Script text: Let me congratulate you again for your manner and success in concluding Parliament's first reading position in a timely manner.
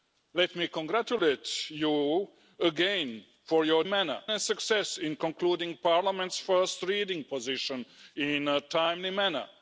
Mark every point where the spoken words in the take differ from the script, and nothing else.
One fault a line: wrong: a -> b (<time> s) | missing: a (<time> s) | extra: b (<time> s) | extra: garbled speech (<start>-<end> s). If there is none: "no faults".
no faults